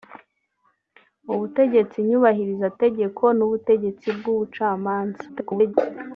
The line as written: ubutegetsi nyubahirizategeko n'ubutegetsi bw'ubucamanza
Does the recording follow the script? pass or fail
fail